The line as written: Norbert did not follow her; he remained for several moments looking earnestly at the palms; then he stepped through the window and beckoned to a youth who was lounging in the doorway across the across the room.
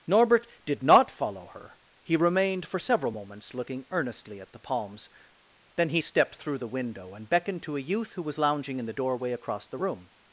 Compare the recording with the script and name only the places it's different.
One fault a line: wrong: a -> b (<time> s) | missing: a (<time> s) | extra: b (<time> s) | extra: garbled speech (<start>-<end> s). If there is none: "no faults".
missing: across the (9.8 s)